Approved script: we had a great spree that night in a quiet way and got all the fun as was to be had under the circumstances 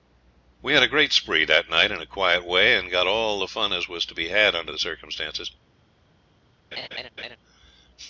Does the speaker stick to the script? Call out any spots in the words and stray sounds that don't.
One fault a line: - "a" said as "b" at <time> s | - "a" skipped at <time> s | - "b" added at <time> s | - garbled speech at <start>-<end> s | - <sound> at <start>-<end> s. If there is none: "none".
- laugh at 6.7-7.4 s